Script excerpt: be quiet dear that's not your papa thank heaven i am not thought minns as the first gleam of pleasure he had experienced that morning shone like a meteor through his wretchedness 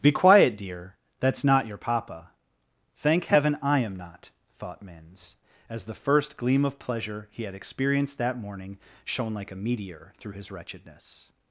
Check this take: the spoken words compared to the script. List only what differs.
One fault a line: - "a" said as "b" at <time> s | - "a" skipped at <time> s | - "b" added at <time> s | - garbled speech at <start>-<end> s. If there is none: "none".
none